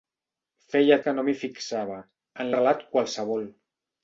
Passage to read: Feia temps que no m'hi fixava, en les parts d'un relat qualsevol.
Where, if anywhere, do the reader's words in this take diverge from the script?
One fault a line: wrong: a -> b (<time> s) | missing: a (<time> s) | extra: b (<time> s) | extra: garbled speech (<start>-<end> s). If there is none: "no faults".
missing: temps (1.0 s)
missing: les parts d'un (2.5 s)